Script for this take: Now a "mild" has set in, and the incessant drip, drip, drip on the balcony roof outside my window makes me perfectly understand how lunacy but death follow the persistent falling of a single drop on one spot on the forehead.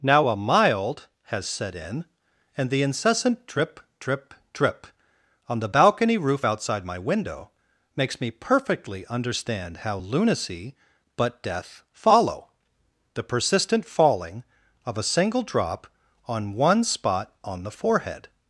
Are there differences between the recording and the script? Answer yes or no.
no